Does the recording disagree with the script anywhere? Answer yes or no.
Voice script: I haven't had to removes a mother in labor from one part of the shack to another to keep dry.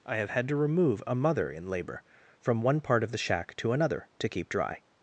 yes